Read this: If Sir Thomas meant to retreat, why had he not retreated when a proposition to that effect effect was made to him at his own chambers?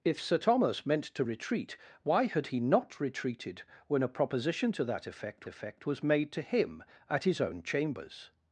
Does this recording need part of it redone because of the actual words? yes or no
no